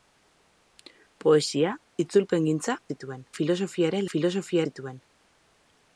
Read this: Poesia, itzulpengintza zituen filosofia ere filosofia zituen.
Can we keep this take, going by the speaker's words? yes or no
yes